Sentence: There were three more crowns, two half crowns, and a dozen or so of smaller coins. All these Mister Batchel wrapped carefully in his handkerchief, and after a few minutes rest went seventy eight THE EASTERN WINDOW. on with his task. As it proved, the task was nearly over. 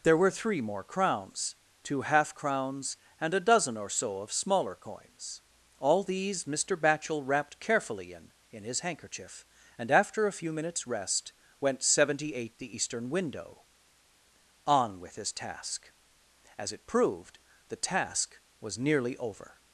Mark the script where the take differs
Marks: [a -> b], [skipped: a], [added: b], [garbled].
There were three more crowns, two half crowns, and a dozen or so of smaller coins. All these Mister Batchel wrapped carefully in [added: in] his handkerchief, and after a few minutes rest went seventy eight THE EASTERN WINDOW. on with his task. As it proved, the task was nearly over.